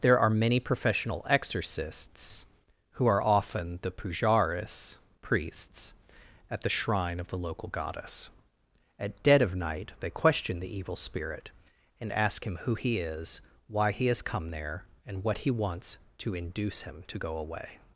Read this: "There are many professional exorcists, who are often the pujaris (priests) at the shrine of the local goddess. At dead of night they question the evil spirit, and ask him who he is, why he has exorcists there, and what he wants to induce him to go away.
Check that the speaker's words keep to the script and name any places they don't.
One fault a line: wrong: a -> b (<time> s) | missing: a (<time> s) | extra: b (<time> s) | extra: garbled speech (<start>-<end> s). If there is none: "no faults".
wrong: exorcists -> come (14.2 s)